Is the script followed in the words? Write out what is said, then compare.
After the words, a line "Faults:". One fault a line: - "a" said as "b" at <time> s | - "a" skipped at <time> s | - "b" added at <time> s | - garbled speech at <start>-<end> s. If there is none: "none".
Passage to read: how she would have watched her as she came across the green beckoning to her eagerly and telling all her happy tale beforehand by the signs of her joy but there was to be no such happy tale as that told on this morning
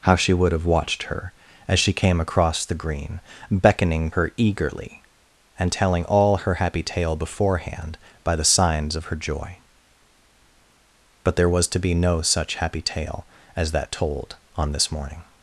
how she would have watched her as she came across the green beckoning her eagerly and telling all her happy tale beforehand by the signs of her joy but there was to be no such happy tale as that told on this morning
Faults:
- "to" skipped at 4.1 s